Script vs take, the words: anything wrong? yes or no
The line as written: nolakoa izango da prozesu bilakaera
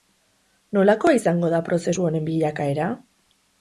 yes